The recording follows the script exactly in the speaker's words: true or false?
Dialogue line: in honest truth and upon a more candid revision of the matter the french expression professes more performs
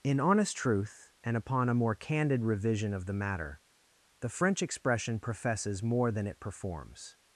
false